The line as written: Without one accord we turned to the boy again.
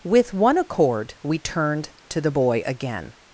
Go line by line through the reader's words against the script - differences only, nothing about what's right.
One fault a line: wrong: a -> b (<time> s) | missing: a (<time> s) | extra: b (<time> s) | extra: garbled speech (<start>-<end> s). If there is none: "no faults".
wrong: Without -> With (0.0 s)